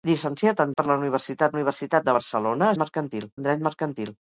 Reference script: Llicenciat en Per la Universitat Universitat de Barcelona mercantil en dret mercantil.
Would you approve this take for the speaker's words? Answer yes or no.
yes